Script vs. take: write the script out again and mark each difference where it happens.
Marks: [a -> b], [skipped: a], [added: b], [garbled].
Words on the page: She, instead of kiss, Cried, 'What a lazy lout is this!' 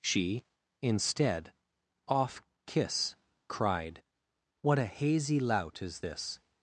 She, instead [of -> off] kiss, Cried, 'What a [lazy -> hazy] lout is this!'